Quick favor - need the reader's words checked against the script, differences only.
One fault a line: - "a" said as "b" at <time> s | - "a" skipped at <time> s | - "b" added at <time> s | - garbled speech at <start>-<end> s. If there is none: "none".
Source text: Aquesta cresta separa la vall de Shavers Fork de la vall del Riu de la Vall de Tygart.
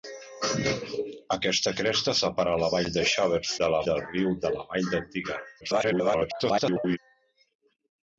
- "Fork" skipped at 3.5 s
- "vall" skipped at 3.8 s
- garbled speech at 5.6-7.0 s